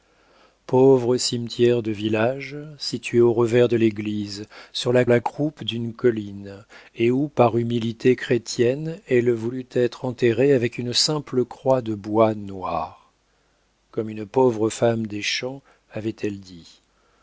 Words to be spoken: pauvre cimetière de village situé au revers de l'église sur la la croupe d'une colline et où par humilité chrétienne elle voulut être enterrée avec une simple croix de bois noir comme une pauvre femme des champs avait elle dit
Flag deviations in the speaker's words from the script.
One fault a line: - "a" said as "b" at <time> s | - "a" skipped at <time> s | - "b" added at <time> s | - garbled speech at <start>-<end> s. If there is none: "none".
none